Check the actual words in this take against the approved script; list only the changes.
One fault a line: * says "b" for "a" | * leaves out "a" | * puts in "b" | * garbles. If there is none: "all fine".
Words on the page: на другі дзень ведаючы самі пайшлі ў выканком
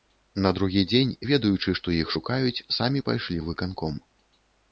* puts in "што іх шукаюць"